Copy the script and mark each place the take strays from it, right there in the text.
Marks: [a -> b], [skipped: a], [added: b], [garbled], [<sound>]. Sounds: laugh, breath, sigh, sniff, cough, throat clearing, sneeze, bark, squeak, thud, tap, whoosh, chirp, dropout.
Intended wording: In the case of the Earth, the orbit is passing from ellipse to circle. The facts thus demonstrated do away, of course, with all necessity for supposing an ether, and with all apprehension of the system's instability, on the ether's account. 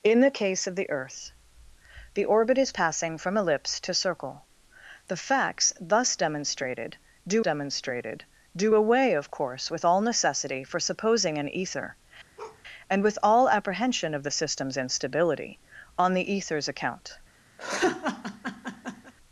In the case of the Earth, the orbit is passing from ellipse to circle. The facts thus demonstrated do [added: demonstrated do] away, of course, with all necessity for supposing an ether, [bark] and with all apprehension of the system's instability, on the ether's account. [laugh]